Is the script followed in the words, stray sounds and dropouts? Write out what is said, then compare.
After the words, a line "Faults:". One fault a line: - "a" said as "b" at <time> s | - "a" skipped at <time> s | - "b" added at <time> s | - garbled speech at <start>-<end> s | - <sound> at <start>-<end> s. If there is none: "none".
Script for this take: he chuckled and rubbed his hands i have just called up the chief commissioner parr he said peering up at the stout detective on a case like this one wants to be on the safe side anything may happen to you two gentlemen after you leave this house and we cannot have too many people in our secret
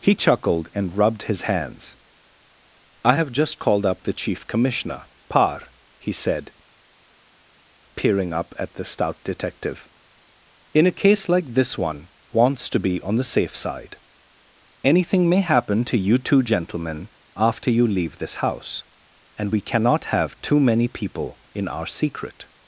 he chuckled and rubbed his hands i have just called up the chief commissioner parr he said peering up at the stout detective in a case like this one wants to be on the safe side anything may happen to you two gentlemen after you leave this house and we cannot have too many people in our secret
Faults:
- "on" said as "in" at 10.7 s